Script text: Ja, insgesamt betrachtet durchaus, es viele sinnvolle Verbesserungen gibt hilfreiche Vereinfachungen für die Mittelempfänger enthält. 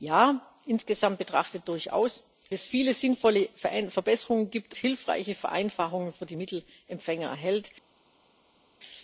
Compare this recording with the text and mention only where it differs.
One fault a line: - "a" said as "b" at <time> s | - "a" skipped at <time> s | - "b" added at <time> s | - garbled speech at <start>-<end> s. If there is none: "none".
none